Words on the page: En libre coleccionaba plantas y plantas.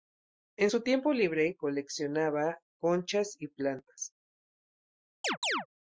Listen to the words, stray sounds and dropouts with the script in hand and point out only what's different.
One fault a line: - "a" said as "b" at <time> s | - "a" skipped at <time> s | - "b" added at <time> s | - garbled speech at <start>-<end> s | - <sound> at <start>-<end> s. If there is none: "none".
- "su tiempo" added at 0.7 s
- "plantas" said as "conchas" at 2.8 s
- chirp at 5.2-5.7 s